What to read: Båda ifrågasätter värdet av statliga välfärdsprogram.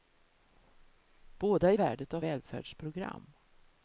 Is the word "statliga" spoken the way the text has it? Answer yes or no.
no